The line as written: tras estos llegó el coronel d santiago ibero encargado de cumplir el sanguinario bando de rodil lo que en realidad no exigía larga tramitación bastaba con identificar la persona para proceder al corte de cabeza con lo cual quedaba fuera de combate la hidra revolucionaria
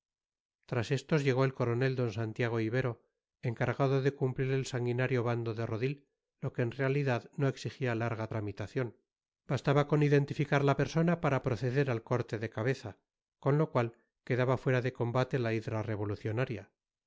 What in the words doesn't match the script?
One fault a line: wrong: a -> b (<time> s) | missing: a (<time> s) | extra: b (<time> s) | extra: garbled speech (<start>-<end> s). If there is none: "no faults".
no faults